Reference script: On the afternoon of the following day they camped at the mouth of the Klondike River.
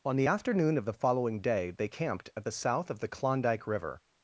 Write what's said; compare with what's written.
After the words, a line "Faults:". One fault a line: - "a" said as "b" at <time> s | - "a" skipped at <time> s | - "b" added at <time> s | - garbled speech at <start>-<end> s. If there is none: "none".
On the afternoon of the following day they camped at the south of the Klondike River.
Faults:
- "mouth" said as "south" at 2.5 s